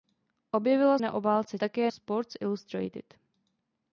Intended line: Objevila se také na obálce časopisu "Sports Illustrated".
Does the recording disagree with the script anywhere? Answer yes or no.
yes